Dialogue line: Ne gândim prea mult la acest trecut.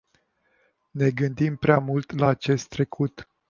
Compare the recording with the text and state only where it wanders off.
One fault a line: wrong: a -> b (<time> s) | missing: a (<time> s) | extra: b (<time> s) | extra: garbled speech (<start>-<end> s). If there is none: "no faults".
no faults